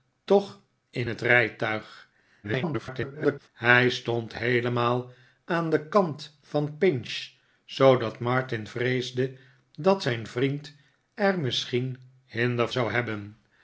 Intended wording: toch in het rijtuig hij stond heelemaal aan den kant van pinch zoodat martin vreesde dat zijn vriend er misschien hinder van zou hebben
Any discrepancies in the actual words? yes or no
yes